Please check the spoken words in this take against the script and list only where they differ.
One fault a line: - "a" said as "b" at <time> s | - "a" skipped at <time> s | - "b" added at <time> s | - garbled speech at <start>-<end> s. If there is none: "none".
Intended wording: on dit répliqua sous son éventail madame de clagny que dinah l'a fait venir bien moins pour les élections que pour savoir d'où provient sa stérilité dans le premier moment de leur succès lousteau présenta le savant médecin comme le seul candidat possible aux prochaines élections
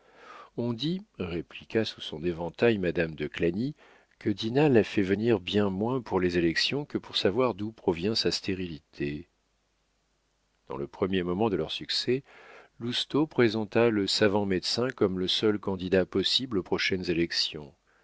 none